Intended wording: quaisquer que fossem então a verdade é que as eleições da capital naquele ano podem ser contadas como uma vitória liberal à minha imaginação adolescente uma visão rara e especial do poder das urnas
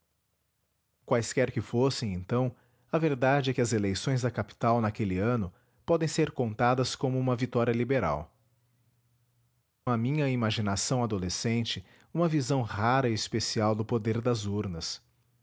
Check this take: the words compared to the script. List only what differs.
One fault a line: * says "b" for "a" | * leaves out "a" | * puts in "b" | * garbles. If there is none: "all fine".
all fine